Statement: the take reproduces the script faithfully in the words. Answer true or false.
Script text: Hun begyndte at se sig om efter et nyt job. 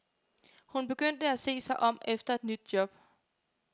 true